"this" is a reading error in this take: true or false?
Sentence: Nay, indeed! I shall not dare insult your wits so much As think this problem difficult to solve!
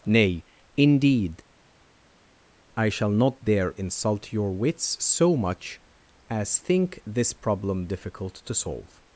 false